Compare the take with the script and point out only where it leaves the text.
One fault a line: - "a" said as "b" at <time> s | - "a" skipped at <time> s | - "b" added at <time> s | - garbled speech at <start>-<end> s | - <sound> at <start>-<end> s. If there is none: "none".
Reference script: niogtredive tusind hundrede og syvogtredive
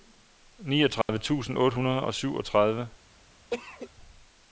- dropout at 1.0-1.1 s
- "otte" added at 1.6 s
- cough at 3.5-3.9 s